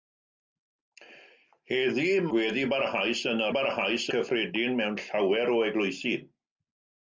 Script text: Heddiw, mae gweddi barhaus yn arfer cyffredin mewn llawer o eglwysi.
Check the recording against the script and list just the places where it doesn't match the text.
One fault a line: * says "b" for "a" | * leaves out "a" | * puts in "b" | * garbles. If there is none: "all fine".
* leaves out "mae"
* says "barhaus" for "arfer"